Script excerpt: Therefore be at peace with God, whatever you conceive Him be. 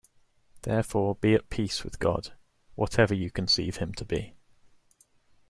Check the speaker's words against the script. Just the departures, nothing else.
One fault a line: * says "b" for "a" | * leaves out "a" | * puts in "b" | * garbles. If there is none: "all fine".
* puts in "to"